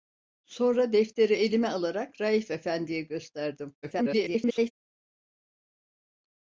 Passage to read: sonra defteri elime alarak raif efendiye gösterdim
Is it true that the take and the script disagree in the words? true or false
true